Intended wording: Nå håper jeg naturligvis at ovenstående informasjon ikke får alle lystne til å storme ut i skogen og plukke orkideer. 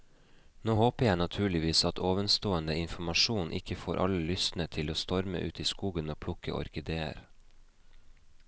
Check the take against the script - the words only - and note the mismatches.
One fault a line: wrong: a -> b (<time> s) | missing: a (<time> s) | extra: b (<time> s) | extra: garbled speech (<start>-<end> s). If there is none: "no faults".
no faults